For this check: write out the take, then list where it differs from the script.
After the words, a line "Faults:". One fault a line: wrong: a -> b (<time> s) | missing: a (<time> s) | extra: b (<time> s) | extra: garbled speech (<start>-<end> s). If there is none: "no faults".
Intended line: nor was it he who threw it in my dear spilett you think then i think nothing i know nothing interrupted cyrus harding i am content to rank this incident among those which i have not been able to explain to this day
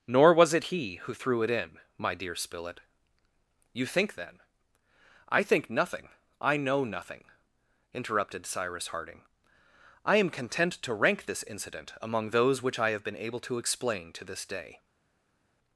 nor was it he who threw it in my dear spilett you think then i think nothing i know nothing interrupted cyrus harding i am content to rank this incident among those which i have been able to explain to this day
Faults:
missing: not (13.0 s)